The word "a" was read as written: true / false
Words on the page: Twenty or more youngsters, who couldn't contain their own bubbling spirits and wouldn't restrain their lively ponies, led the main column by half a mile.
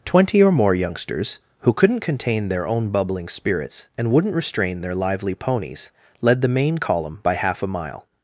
true